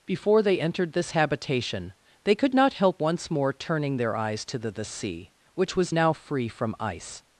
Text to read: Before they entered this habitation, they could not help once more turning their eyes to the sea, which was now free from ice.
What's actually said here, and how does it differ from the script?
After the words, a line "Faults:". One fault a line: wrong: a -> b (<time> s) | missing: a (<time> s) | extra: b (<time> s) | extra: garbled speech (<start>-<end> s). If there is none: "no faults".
Before they entered this habitation, they could not help once more turning their eyes to the the sea, which was now free from ice.
Faults:
extra: the (4.7 s)